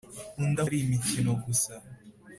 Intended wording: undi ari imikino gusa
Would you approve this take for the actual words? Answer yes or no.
yes